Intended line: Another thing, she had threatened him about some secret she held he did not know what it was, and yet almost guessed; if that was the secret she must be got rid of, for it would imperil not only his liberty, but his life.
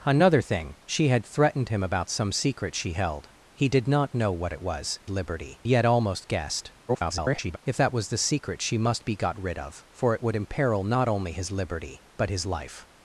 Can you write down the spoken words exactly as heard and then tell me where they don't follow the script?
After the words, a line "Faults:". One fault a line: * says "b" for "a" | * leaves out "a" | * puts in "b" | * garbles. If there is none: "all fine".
Another thing, she had threatened him about some secret she held he did not know what it was, liberty yet almost guessed; [garbled] if that was the secret she must be got rid of, for it would imperil not only his liberty, but his life.
Faults:
* says "liberty" for "and"
* garbles